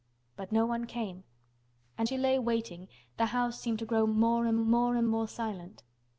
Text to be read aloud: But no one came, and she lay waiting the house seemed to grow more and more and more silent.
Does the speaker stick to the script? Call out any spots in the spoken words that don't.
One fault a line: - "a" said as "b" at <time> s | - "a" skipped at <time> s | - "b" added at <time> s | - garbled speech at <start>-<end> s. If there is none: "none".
none